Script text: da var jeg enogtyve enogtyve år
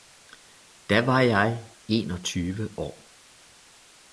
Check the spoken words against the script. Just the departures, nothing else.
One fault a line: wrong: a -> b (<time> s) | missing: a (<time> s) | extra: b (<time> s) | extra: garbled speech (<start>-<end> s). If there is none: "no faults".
missing: enogtyve (2.7 s)